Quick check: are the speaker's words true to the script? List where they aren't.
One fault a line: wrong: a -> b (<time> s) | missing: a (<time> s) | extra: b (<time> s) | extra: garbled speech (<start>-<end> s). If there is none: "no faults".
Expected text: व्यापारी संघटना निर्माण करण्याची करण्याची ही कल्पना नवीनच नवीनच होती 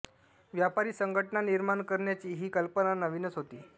missing: करण्याची (2.3 s)
missing: नवीनच (3.4 s)